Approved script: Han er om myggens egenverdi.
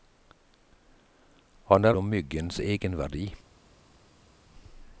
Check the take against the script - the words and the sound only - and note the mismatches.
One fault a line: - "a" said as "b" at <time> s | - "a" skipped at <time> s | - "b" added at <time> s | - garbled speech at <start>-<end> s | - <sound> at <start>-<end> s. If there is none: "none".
none